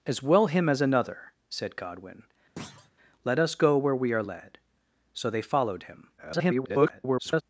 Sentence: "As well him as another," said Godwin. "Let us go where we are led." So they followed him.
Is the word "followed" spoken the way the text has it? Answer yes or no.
yes